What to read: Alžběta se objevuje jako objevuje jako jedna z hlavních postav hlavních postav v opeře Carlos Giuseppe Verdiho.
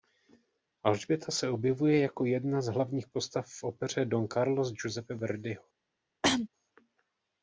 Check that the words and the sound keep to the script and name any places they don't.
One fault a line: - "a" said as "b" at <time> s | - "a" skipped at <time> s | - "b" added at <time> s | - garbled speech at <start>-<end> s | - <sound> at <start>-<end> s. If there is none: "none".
- "objevuje jako" skipped at 2.2 s
- "hlavních postav" skipped at 3.5 s
- "Don" added at 4.0 s
- cough at 6.2-6.5 s